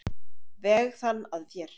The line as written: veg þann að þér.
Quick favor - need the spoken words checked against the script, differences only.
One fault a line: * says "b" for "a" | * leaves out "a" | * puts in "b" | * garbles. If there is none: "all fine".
all fine